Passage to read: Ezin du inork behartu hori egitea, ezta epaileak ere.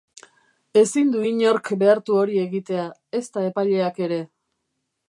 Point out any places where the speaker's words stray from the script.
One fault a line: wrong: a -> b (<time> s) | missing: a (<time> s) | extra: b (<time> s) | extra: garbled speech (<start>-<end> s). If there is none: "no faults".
no faults